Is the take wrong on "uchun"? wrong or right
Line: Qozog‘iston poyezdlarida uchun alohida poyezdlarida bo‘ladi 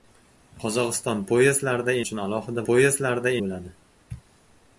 right